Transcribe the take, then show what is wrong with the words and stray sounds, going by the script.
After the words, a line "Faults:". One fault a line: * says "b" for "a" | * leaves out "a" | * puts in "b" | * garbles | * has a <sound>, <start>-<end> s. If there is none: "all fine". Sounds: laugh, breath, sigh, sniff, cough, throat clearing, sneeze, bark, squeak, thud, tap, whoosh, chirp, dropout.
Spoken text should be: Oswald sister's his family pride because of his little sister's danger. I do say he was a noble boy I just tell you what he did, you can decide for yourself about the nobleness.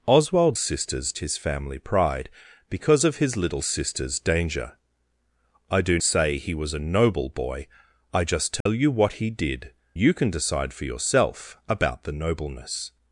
Oswald sister's his family pride because of his little sister's danger. I do say he was a noble boy I just tell you what he did, you can decide for yourself about the nobleness.
Faults:
* has a dropout, 8.6-8.7 s